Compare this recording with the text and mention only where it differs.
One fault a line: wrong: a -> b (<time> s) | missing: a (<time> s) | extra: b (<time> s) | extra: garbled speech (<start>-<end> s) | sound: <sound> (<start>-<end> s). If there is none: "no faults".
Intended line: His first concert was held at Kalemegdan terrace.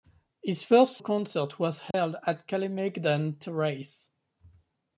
sound: dropout (1.9-1.9 s)